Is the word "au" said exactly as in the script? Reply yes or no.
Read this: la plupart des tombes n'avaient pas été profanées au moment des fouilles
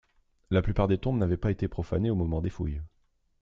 yes